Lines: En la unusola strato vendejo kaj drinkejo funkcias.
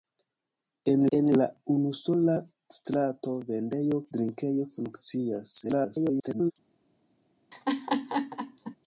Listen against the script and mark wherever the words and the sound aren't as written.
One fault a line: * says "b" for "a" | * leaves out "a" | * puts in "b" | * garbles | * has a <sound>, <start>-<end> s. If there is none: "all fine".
* puts in "en"
* leaves out "kaj"
* garbles
* has a laugh, 7.5-8.8 s